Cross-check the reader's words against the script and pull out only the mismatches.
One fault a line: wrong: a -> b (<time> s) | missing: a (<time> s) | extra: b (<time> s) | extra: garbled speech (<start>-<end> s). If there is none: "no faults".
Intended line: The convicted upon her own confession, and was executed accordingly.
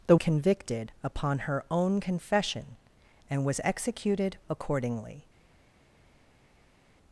no faults